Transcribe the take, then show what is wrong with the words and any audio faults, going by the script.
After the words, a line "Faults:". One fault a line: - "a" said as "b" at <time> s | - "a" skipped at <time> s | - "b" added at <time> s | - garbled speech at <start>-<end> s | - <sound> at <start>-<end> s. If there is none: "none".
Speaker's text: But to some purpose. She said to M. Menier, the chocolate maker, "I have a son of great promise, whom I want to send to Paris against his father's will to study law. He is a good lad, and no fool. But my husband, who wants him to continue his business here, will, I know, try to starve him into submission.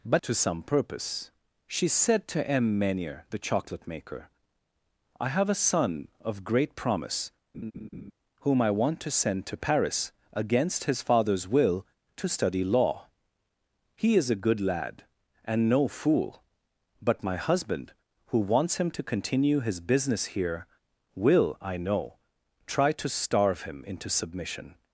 But to some purpose. She said to M. Menier, the chocolate maker, "I have a son of great promise, whom I want to send to Paris against his father's will to study law. He is a good lad, and no fool. But my husband, who wants him to continue his business here, will, I know, try to starve him into submission.
Faults:
- laugh at 7.5-8.1 s